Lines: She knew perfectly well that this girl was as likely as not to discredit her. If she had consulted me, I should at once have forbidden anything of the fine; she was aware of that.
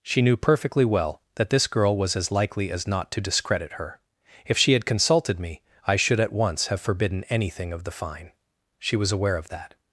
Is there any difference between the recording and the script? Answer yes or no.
no